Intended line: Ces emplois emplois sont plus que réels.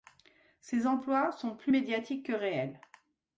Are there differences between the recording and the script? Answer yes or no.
yes